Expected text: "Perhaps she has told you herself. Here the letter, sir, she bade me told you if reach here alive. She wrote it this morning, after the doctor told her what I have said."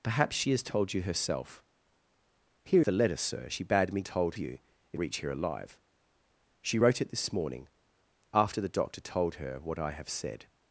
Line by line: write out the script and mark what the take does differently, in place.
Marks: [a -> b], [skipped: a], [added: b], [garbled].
"Perhaps she has told you herself. Here the letter, sir, she bade me told you if reach here alive. She wrote it this morning, after the doctor told her what I have said."